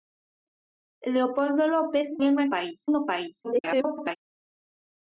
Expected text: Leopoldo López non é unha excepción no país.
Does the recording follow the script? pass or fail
fail